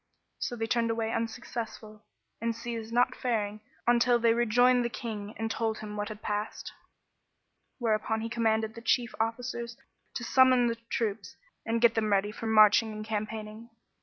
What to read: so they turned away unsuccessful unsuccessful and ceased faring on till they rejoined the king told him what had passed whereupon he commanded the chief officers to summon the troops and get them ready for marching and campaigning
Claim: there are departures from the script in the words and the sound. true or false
true